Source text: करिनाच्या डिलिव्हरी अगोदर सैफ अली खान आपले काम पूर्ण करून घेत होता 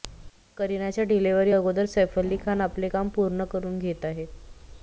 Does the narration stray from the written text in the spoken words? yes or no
yes